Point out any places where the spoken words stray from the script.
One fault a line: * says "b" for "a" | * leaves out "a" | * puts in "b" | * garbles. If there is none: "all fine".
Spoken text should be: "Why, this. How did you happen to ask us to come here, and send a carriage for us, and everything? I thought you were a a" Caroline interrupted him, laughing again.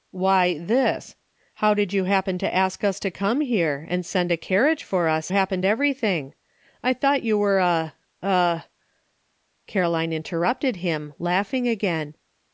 * says "happen" for "and"